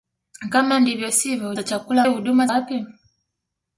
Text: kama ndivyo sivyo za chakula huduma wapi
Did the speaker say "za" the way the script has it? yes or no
yes